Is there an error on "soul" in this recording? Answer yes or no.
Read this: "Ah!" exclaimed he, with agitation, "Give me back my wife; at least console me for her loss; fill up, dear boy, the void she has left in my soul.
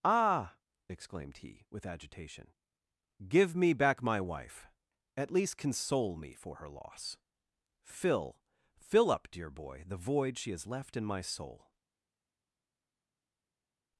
no